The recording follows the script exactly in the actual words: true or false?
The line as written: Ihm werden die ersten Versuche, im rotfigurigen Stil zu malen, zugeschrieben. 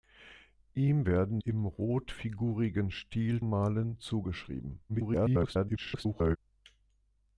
false